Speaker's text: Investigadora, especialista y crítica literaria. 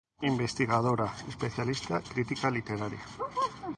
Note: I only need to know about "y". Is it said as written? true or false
false